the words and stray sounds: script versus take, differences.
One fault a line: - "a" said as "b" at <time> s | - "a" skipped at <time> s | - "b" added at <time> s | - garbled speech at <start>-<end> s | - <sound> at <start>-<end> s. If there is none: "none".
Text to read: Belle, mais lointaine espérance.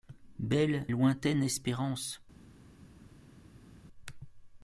- "mais" skipped at 0.9 s